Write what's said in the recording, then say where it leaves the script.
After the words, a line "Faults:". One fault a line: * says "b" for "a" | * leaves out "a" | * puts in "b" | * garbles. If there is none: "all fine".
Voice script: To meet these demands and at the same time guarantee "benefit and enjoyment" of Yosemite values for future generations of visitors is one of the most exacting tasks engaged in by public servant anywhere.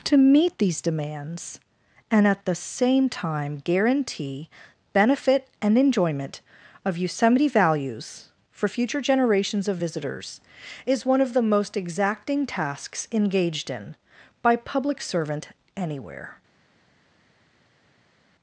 To meet these demands and at the same time guarantee "benefit and enjoyment" of Yosemite values for future generations of visitors is one of the most exacting tasks engaged in by public servant anywhere.
Faults:
all fine